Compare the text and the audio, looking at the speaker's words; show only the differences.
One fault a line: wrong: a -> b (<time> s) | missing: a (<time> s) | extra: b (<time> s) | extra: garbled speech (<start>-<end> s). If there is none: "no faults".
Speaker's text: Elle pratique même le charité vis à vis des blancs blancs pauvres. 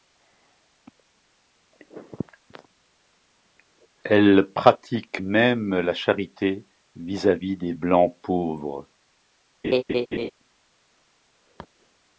wrong: le -> la (5.8 s)
missing: blancs (8.1 s)